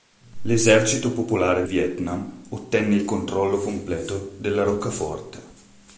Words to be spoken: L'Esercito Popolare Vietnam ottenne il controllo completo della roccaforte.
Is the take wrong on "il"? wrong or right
right